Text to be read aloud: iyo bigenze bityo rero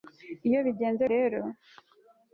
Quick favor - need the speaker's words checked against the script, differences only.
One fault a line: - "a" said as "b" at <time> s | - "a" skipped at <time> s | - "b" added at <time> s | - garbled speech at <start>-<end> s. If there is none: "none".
- "bityo" skipped at 1.0 s